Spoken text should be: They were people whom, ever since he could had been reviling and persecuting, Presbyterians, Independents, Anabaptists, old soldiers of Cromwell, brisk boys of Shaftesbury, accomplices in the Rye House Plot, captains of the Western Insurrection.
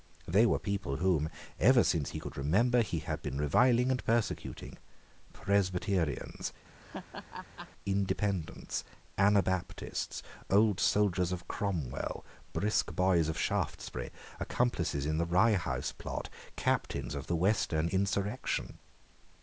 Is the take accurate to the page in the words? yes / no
no